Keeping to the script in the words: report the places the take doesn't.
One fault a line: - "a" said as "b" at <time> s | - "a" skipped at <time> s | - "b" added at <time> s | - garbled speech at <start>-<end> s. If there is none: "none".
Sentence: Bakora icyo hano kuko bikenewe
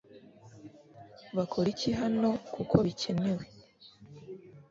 - "icyo" said as "iki" at 1.7 s